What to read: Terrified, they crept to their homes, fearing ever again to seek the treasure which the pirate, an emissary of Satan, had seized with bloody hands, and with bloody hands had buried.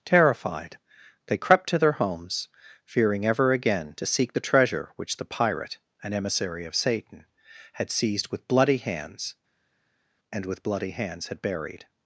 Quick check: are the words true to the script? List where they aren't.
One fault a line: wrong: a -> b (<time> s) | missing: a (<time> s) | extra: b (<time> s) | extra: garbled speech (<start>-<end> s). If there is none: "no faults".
no faults